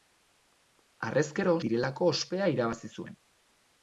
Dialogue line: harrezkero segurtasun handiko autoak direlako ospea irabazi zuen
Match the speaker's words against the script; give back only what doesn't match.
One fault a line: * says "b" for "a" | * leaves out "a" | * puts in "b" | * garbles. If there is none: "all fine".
* leaves out "segurtasun handiko autoak"